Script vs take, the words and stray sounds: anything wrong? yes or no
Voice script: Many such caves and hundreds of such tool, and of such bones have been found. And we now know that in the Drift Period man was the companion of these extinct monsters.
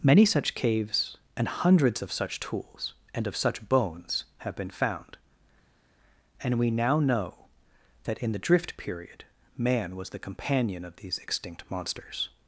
yes